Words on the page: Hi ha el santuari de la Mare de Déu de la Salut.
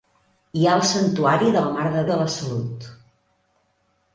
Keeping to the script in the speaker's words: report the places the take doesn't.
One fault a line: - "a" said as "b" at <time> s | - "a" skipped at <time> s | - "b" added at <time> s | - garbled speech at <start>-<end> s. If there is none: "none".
- "Déu" skipped at 2.1 s